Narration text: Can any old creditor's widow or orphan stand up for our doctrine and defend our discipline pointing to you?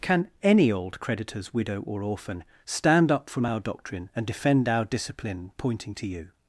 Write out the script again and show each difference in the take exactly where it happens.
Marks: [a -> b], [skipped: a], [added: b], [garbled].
Can any old creditor's widow or orphan stand up [for -> from] our doctrine and defend our discipline pointing to you?